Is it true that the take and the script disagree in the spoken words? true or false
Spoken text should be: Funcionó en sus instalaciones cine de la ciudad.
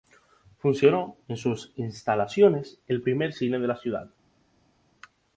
true